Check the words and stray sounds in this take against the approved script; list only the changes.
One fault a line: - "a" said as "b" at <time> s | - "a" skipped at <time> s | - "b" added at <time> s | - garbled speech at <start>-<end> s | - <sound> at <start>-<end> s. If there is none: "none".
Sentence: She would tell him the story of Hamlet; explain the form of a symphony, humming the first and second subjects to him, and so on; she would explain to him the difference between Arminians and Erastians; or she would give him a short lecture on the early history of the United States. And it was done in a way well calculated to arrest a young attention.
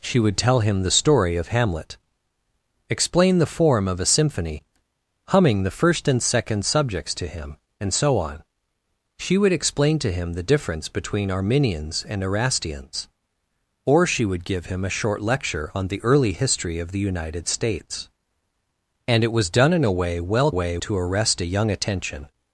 - "calculated" said as "way" at 20.5 s